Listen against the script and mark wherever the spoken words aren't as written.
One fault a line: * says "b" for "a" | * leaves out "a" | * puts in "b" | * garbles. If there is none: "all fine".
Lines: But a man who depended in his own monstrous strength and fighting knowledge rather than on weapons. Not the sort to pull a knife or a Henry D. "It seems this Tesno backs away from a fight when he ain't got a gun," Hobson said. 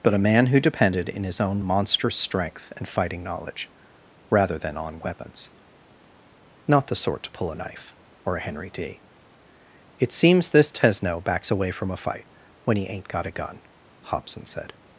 all fine